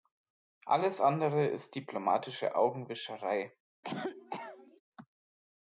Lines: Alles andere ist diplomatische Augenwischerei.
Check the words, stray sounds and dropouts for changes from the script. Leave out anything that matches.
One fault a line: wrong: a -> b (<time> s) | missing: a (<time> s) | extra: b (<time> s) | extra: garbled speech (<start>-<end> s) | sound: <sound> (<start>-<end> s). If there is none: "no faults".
sound: cough (3.8-4.8 s)